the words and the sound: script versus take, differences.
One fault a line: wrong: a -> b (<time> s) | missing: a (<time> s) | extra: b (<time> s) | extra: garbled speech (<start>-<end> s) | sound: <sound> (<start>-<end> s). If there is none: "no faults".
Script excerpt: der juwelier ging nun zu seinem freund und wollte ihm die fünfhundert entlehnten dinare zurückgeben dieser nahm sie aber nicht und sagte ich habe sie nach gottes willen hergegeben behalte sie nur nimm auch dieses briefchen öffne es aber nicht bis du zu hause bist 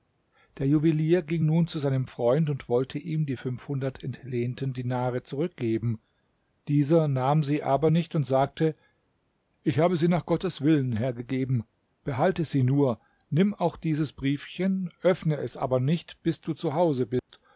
sound: dropout (17.2-17.3 s)